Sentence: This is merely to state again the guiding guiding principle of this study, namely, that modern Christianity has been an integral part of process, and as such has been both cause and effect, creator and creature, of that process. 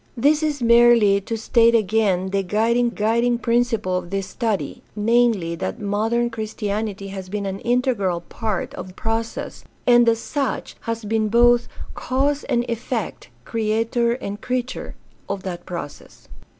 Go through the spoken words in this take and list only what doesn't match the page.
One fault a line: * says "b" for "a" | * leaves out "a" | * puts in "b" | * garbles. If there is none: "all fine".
all fine